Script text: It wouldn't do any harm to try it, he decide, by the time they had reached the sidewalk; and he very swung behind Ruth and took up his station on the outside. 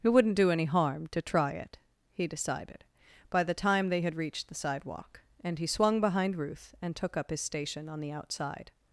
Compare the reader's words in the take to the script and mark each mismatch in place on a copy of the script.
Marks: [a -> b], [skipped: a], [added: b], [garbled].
It wouldn't do any harm to try it, he [decide, -> decided] by the time they had reached the sidewalk; and he [skipped: very] swung behind Ruth and took up his station on the outside.